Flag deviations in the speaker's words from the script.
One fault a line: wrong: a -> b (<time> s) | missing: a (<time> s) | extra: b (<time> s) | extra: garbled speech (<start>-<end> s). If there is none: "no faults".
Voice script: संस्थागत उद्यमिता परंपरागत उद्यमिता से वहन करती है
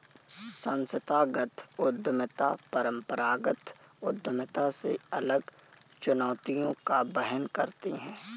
extra: अलग चुनौतियों का (5.1 s)